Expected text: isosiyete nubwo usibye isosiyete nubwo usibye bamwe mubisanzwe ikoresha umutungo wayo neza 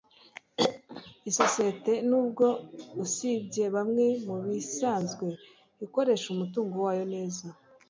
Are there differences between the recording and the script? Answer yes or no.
yes